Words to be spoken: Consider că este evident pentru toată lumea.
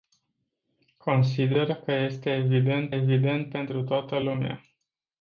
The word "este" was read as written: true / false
true